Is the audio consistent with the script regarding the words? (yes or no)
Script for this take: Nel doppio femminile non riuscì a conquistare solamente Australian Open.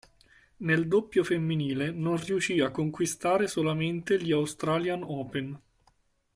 no